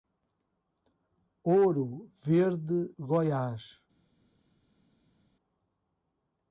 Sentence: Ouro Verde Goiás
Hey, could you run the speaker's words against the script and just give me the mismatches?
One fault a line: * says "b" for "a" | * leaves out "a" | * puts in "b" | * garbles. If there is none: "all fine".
all fine